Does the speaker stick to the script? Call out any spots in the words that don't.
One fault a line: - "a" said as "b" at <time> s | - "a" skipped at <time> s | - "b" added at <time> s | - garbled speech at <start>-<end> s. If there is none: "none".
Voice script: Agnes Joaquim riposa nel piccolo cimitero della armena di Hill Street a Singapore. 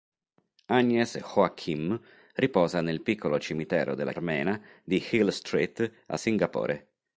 none